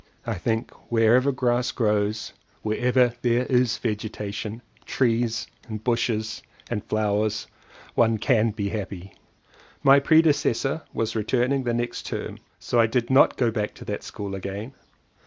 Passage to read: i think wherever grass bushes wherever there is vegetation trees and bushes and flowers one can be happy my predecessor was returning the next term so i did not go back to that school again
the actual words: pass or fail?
fail